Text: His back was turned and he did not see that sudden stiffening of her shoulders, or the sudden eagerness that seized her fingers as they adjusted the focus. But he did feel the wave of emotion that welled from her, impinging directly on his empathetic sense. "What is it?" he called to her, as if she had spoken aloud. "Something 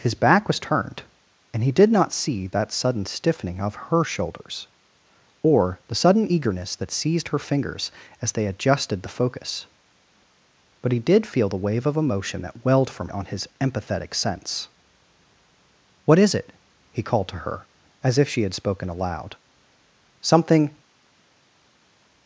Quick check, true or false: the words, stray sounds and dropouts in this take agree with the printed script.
false